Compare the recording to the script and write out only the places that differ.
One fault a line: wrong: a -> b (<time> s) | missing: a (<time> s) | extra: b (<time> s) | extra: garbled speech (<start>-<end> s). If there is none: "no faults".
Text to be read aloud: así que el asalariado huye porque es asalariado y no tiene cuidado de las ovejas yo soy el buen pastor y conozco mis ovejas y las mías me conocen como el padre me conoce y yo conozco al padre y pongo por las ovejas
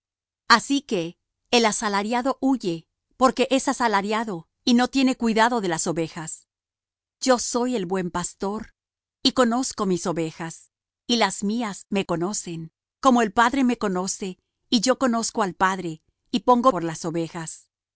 no faults